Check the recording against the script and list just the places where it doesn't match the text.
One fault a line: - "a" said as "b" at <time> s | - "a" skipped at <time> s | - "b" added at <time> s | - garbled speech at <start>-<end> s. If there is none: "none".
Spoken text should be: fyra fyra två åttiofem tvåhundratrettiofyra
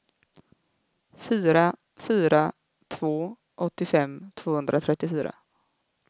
none